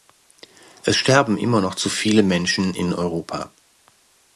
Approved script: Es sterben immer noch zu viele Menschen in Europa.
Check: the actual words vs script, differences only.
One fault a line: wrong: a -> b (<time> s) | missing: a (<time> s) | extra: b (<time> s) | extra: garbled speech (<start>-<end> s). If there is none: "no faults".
no faults